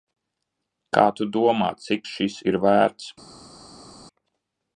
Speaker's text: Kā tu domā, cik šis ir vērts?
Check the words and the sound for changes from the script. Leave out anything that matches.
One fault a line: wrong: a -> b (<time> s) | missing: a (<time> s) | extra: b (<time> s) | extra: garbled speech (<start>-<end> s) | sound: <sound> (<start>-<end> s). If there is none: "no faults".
no faults